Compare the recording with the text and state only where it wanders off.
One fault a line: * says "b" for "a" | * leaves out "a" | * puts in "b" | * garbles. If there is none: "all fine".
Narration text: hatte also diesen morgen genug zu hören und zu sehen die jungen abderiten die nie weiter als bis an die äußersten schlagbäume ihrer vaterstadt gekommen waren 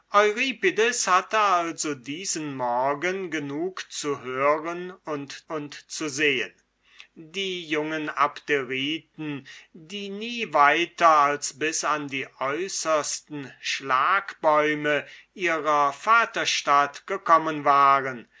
* puts in "und"